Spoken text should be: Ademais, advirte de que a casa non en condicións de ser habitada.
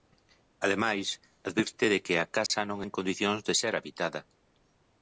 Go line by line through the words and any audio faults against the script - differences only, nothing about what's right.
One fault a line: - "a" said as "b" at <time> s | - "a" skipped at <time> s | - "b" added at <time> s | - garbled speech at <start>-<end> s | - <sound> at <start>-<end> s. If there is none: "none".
- dropout at 2.5-2.5 s